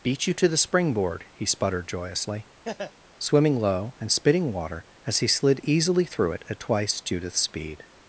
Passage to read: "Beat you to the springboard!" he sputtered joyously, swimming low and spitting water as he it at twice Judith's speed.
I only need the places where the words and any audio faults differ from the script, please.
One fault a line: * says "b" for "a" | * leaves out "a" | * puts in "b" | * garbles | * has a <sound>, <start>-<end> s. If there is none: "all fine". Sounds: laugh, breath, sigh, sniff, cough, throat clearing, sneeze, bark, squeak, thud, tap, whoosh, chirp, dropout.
* has a laugh, 2.6-2.9 s
* puts in "slid easily through"